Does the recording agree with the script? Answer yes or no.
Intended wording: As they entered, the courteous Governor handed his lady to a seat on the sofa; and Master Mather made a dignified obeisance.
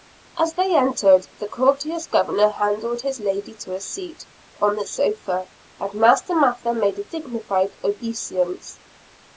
yes